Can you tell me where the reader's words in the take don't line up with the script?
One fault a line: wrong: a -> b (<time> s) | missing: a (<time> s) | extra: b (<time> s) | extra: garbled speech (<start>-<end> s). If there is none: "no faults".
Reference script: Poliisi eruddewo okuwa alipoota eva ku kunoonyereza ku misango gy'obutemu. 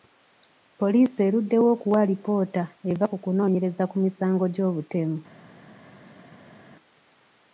no faults